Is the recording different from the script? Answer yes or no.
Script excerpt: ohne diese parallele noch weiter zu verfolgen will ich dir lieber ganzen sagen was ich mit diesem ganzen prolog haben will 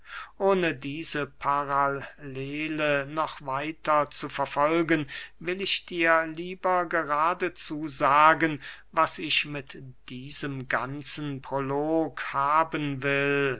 yes